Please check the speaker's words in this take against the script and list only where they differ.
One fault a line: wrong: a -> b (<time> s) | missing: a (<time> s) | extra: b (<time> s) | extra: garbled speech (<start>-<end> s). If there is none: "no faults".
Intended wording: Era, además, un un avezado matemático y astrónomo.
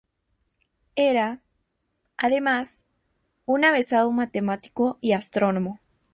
missing: un (3.6 s)